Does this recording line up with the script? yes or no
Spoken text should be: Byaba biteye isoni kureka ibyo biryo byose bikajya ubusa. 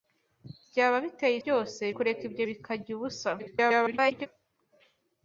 no